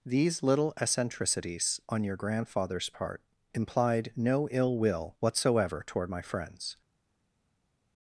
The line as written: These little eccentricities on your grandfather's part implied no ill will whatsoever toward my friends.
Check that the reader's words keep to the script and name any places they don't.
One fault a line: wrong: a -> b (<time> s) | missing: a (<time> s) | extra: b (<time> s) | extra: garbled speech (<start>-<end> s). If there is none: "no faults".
no faults